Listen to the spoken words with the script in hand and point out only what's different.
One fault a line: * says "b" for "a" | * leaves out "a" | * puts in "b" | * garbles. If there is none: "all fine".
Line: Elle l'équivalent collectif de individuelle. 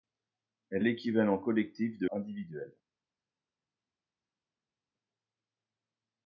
all fine